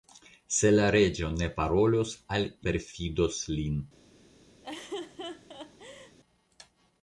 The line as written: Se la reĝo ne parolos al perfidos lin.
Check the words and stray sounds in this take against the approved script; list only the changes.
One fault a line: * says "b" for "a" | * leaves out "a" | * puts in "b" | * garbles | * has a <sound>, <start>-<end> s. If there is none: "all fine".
* has a laugh, 4.6-6.2 s